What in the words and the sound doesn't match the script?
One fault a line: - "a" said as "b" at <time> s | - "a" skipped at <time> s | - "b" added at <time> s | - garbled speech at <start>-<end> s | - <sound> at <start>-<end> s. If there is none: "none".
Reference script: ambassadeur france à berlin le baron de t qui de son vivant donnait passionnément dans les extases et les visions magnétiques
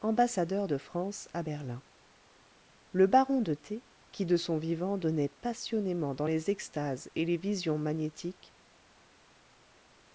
- "de" added at 0.7 s